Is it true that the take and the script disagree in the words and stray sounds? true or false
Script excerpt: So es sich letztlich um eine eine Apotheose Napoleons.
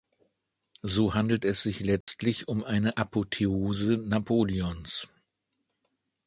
true